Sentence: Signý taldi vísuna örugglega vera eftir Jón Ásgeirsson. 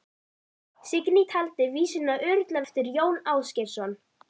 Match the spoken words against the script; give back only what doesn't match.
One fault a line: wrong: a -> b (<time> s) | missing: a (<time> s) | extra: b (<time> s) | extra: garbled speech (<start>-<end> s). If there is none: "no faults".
missing: vera (2.6 s)